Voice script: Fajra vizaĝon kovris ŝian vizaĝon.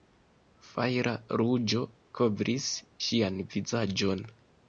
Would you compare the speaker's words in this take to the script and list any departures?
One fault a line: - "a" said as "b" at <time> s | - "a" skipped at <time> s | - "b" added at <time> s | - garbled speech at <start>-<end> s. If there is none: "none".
- "vizaĝon" said as "ruĝo" at 1.4 s